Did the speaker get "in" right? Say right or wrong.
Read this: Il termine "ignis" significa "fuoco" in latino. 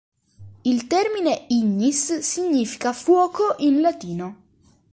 right